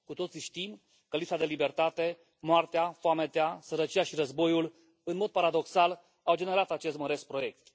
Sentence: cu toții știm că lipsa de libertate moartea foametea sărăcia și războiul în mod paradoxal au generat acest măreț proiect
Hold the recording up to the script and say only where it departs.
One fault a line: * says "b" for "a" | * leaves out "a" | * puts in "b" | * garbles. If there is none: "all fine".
all fine